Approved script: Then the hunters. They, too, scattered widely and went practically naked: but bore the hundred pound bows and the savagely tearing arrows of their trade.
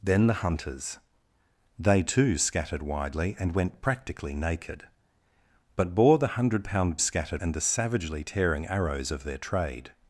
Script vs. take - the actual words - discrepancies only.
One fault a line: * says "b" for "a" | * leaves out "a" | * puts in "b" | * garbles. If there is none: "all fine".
* says "scattered" for "bows"